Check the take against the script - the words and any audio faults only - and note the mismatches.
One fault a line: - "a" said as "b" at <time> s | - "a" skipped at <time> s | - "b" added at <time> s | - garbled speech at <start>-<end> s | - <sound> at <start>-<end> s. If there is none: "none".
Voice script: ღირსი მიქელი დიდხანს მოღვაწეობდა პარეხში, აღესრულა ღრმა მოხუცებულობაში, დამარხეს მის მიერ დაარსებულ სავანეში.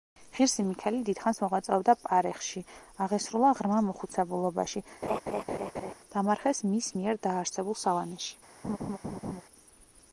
- laugh at 5.0-5.9 s
- laugh at 8.6-9.4 s